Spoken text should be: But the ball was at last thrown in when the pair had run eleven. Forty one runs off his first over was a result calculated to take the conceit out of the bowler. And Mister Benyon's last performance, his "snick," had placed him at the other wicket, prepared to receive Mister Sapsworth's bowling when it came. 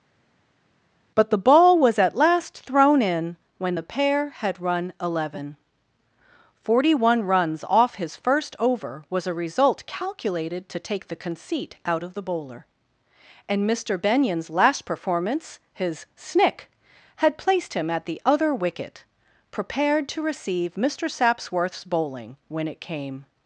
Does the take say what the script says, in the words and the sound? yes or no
yes